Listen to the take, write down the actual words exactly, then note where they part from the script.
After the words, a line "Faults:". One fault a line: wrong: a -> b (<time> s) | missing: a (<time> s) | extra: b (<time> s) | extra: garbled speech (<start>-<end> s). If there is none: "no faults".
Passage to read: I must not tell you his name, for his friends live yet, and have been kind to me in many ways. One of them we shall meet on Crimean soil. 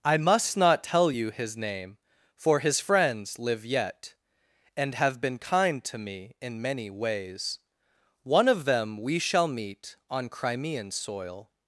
I must not tell you his name, for his friends live yet, and have been kind to me in many ways. One of them we shall meet on Crimean soil.
Faults:
no faults